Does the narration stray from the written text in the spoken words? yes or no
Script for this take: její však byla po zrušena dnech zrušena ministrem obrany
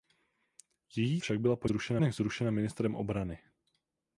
no